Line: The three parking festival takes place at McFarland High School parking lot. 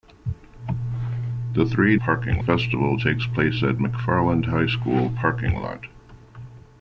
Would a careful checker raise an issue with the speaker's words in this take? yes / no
no